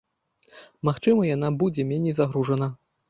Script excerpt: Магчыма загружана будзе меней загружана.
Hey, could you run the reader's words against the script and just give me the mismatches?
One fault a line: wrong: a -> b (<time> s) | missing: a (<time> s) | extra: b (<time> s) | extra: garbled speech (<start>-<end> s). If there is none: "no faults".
wrong: загружана -> яна (1.4 s)